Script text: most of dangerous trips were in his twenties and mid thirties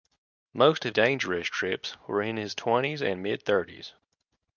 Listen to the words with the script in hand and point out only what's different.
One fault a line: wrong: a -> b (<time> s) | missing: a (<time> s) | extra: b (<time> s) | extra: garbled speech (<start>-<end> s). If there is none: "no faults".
no faults